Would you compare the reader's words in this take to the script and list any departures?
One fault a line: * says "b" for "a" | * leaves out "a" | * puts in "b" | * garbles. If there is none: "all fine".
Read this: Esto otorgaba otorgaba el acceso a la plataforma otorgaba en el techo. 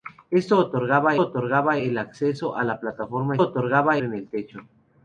all fine